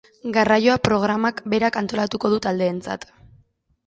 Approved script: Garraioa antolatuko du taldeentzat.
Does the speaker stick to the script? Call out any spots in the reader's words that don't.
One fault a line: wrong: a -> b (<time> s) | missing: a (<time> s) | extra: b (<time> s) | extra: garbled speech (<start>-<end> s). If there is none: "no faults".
extra: programak berak (0.9 s)